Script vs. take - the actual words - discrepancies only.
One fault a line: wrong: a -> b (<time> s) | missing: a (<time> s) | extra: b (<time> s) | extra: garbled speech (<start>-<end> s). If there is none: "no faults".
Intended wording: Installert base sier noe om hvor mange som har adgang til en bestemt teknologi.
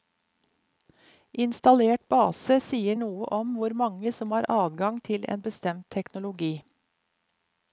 no faults